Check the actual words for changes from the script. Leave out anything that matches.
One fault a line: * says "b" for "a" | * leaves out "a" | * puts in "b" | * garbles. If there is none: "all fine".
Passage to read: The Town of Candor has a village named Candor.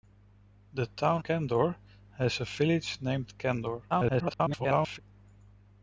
* leaves out "of"
* garbles